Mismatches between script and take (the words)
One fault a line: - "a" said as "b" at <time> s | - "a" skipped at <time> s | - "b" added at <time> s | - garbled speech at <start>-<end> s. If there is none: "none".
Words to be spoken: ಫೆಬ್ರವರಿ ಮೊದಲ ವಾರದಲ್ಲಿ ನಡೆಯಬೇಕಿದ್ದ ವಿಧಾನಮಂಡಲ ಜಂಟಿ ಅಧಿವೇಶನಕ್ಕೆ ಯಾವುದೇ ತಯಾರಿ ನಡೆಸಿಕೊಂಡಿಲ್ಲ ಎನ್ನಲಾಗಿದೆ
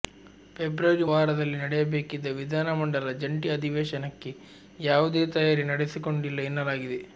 - "ಮೊದಲ" skipped at 1.1 s